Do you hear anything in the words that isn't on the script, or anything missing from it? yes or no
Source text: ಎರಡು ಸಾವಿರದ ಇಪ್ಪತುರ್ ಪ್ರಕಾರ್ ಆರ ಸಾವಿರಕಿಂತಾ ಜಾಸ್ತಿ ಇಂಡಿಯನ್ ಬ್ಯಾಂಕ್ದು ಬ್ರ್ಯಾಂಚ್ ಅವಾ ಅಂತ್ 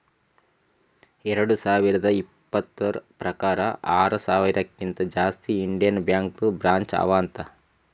no